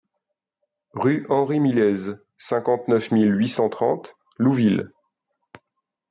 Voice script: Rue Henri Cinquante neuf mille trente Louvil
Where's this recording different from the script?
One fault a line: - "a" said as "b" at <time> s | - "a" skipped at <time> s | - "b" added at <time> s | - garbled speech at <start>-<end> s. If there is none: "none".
- "Millez" added at 1.6 s
- "huit cent" added at 3.4 s